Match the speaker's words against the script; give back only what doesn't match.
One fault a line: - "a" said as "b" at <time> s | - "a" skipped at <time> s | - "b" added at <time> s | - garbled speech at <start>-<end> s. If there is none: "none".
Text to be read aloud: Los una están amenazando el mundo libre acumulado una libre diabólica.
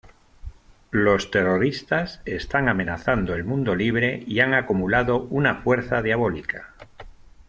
- "una" said as "terroristas" at 1.3 s
- "y han" added at 4.2 s
- "libre" said as "fuerza" at 5.6 s